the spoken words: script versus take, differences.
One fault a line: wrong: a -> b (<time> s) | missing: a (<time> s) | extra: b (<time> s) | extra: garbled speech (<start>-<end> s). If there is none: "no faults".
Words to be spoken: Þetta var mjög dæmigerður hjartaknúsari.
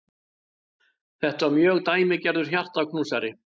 no faults